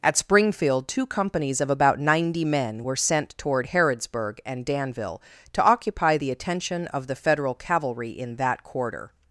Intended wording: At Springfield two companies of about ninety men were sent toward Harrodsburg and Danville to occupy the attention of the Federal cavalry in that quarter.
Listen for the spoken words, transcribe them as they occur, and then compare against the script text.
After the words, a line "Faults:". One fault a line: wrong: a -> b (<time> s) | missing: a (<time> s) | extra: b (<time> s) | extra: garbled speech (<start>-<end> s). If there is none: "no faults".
At Springfield two companies of about ninety men were sent toward Harrodsburg and Danville to occupy the attention of the Federal cavalry in that quarter.
Faults:
no faults